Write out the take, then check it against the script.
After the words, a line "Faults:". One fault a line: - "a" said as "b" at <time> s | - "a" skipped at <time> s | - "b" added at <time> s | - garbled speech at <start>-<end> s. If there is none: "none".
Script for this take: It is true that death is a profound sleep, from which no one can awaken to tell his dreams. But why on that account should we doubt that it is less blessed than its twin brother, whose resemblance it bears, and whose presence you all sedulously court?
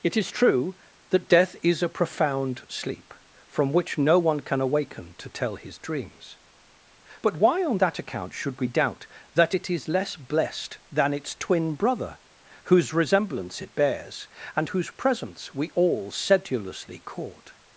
It is true that death is a profound sleep, from which no one can awaken to tell his dreams. But why on that account should we doubt that it is less blessed than its twin brother, whose resemblance it bears, and whose presence we all sedulously court?
Faults:
- "you" said as "we" at 15.5 s